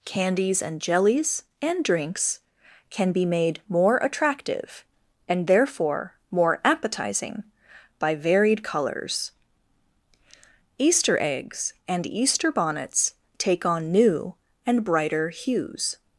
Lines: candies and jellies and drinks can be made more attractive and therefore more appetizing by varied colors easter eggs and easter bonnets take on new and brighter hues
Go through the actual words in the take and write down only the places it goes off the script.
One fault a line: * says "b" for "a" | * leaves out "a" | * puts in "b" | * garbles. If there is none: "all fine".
all fine